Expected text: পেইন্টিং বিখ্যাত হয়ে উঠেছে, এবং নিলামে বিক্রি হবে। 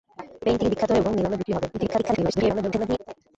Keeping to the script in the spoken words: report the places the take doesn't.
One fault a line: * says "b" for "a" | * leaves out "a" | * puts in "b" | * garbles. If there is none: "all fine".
* leaves out "উঠেছে"
* garbles